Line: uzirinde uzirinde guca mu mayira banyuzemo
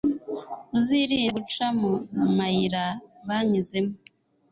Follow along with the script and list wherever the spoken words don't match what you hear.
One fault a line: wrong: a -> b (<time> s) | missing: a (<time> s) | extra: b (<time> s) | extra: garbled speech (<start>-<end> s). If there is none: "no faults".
missing: uzirinde (1.3 s)